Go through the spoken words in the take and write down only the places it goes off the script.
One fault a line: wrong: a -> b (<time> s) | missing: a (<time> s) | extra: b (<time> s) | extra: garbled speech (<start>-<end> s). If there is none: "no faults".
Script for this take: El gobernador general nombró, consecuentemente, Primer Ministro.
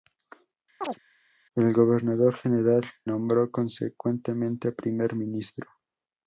no faults